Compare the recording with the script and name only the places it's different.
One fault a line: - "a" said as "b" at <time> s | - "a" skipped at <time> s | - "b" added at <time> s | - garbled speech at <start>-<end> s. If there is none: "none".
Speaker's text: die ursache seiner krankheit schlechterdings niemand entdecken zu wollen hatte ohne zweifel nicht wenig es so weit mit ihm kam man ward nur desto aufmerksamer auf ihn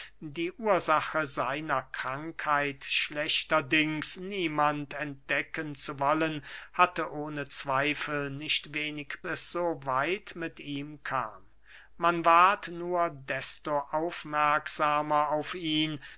none